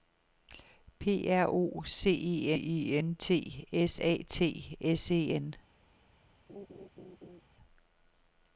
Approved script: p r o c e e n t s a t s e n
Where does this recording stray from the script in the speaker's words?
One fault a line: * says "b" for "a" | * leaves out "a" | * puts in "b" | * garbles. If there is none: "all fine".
all fine